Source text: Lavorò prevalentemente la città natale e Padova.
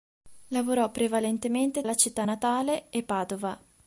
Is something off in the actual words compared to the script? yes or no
no